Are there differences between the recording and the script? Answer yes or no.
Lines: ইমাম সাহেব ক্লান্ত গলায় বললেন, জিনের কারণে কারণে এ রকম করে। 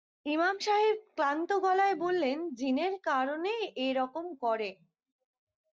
yes